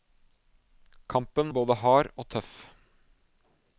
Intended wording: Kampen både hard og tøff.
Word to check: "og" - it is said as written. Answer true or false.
true